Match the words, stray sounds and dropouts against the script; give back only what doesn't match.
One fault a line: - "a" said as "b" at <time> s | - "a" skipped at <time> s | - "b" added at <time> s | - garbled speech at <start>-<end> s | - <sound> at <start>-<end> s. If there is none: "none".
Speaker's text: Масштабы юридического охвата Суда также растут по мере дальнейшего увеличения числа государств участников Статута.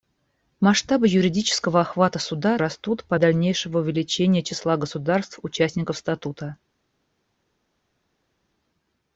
- "также" skipped at 2.6 s
- "мере" skipped at 3.1 s